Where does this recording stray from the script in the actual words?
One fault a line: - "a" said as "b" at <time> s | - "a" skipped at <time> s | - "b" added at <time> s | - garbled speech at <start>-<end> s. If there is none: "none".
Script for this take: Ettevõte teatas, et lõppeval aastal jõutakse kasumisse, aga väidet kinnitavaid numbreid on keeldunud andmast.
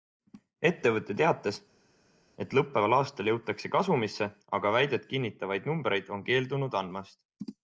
none